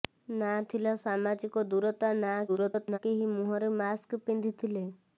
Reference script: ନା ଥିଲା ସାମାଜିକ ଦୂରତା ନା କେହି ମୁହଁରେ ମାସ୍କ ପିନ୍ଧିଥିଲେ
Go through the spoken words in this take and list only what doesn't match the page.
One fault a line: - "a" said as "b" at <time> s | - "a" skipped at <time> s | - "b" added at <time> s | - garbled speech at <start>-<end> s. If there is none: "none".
- garbled speech at 2.5-3.0 s